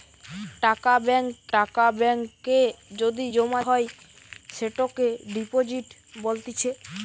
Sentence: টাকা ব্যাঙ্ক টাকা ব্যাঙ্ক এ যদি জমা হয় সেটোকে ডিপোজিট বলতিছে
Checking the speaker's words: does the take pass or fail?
pass